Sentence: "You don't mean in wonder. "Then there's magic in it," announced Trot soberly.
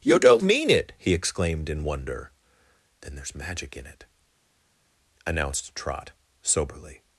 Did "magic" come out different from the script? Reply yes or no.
no